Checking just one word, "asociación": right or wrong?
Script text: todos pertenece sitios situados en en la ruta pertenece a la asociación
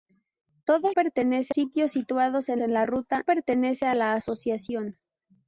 right